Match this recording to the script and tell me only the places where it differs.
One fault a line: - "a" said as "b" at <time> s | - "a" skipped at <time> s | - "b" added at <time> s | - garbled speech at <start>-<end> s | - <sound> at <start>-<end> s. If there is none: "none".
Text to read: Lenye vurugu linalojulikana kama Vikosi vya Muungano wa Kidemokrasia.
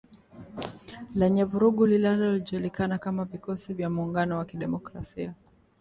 none